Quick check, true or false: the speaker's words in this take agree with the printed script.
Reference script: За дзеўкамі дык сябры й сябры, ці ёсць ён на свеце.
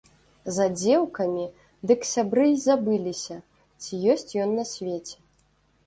false